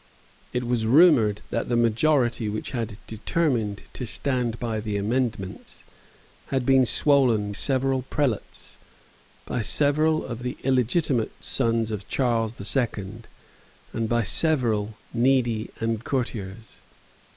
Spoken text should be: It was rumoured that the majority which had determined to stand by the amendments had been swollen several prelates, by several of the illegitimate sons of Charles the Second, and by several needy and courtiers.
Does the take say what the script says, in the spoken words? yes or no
yes